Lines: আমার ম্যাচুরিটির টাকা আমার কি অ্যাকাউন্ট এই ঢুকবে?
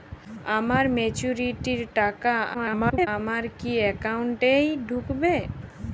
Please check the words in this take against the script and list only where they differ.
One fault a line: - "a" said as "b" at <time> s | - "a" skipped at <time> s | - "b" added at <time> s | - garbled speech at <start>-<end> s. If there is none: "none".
- garbled speech at 2.5-3.1 s